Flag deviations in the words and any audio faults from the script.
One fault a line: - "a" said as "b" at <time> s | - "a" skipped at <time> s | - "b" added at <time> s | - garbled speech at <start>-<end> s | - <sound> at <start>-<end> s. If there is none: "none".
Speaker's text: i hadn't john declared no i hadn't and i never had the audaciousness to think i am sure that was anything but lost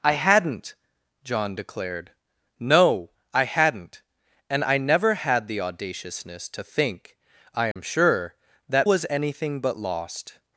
- dropout at 7.7-7.8 s